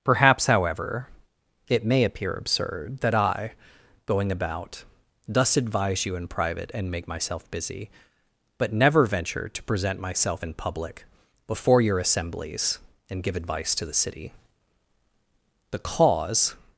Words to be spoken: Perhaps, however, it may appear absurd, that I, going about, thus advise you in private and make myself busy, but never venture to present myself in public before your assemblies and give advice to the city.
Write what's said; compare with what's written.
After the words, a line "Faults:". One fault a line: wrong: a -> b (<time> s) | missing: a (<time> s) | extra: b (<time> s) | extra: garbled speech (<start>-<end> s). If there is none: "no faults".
Perhaps, however, it may appear absurd, that I, going about, thus advise you in private and make myself busy, but never venture to present myself in public before your assemblies and give advice to the city. The cause
Faults:
extra: The cause (15.7 s)